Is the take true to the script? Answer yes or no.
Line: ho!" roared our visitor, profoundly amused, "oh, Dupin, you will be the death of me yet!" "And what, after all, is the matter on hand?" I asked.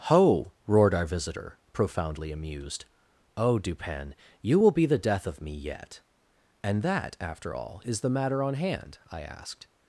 no